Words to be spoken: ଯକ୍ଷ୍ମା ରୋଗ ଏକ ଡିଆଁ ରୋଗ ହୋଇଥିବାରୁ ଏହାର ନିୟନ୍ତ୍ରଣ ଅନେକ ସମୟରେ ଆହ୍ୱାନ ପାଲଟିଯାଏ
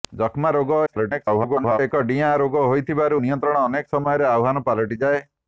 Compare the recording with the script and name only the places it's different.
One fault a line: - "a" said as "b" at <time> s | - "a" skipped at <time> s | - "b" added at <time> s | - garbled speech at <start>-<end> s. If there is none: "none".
- garbled speech at 0.9-1.8 s
- "ଏହାର" skipped at 3.2 s